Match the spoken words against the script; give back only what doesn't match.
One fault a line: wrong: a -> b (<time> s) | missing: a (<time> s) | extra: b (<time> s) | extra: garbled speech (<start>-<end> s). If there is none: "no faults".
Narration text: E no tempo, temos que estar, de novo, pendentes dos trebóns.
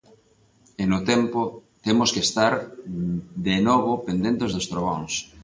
no faults